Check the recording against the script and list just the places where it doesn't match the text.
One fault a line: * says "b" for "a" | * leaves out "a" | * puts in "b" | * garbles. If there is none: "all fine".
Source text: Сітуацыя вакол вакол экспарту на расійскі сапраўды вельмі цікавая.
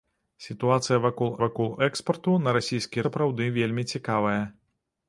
all fine